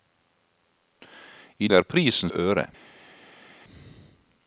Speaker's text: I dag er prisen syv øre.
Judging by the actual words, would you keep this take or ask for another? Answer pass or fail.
fail